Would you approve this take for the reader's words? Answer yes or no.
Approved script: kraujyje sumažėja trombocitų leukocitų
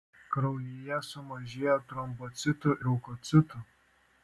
yes